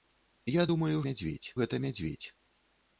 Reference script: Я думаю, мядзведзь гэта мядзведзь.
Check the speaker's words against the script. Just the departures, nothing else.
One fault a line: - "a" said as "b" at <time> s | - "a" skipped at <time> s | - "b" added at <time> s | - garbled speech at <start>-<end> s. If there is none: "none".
none